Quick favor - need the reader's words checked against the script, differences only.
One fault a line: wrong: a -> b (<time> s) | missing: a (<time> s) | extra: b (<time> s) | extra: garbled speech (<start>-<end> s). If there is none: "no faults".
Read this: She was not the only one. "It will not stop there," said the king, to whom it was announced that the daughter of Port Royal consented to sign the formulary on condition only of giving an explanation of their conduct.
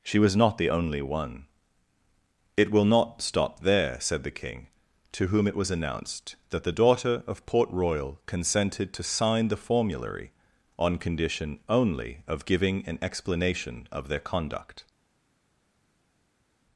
no faults